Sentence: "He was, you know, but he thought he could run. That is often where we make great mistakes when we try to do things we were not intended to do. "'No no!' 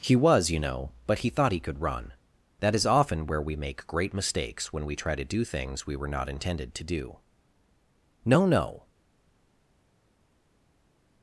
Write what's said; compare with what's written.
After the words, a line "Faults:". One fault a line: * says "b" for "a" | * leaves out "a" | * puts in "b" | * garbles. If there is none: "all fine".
"He was, you know, but he thought he could run. That is often where we make great mistakes when we try to do things we were not intended to do. "'No no!'
Faults:
all fine